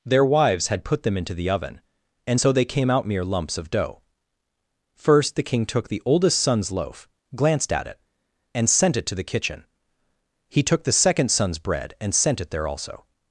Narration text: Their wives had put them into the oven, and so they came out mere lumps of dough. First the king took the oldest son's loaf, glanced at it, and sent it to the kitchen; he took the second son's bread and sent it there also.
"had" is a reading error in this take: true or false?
false